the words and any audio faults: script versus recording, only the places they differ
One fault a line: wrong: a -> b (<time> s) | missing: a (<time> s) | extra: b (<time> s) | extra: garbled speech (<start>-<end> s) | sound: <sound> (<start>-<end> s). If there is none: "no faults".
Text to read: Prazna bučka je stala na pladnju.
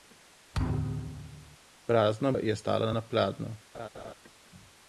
sound: thud (0.5-1.6 s)
missing: bučka (2.3 s)
sound: laugh (3.7-4.1 s)